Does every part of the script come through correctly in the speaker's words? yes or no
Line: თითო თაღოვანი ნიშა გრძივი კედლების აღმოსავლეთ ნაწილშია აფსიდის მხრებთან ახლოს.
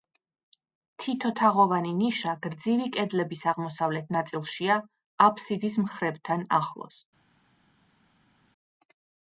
yes